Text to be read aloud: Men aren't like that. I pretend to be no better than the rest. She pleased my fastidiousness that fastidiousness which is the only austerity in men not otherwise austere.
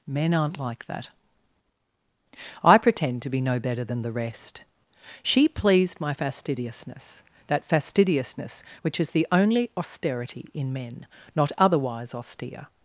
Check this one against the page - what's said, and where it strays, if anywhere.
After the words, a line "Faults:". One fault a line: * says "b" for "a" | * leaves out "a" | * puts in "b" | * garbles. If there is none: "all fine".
Men aren't like that. I pretend to be no better than the rest. She pleased my fastidiousness that fastidiousness which is the only austerity in men not otherwise austere.
Faults:
all fine